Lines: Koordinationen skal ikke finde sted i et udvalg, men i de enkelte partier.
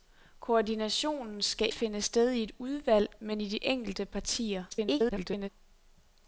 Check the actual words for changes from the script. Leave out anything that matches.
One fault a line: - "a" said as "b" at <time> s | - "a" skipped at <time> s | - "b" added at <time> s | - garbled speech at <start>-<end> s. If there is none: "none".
- "ikke" skipped at 1.7 s
- garbled speech at 4.7-5.5 s